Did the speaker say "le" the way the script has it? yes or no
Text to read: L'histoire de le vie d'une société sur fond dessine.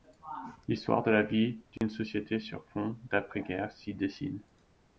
no